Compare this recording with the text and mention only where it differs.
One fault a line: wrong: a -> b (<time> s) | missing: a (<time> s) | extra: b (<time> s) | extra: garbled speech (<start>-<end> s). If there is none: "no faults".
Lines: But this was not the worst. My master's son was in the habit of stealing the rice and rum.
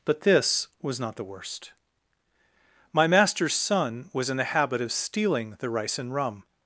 no faults